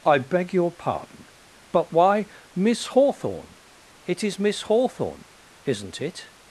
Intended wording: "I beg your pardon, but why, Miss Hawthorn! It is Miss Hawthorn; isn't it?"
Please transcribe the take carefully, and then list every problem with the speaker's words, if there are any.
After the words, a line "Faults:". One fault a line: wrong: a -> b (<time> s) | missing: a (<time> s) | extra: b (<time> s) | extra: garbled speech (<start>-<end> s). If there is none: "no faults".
"I beg your pardon, but why, Miss Hawthorn! It is Miss Hawthorn; isn't it?"
Faults:
no faults